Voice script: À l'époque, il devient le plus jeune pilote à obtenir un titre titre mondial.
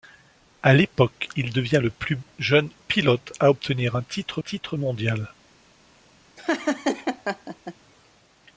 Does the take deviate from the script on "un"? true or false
false